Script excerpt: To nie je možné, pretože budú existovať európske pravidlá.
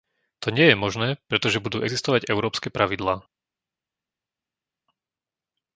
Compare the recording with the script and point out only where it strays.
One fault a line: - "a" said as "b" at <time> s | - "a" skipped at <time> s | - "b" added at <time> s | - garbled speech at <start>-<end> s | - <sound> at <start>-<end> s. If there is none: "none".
none